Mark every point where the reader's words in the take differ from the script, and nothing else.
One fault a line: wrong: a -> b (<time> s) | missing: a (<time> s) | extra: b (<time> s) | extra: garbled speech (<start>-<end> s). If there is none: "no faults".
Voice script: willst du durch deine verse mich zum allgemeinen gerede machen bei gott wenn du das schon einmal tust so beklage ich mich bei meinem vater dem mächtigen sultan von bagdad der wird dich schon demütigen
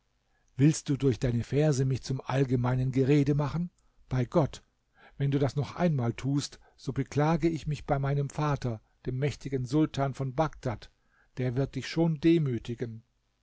wrong: schon -> noch (5.6 s)